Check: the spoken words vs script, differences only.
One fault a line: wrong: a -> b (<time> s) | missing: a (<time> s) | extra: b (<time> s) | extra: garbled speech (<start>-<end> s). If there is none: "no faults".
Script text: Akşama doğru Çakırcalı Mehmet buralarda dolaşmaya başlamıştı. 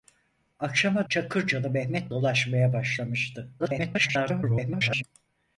missing: doğru (1.1 s)
missing: buralarda (2.1 s)
extra: garbled speech (3.6-5.0 s)